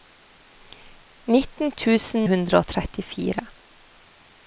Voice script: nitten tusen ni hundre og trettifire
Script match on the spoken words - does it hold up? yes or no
no